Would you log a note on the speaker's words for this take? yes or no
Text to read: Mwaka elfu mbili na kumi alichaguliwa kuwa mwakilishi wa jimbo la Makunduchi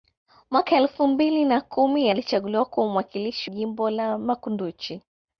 yes